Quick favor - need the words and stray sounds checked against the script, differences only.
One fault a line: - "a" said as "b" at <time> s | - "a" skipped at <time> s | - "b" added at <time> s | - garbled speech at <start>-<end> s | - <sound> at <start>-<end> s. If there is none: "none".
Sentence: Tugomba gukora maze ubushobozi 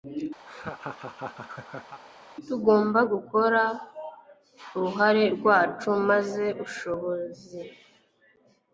- laugh at 0.5-2.0 s
- "uruhare rwacu" added at 4.8 s